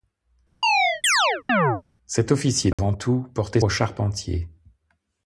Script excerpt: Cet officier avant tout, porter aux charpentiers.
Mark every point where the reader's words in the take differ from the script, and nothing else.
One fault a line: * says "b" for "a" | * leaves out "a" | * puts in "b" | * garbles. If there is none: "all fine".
all fine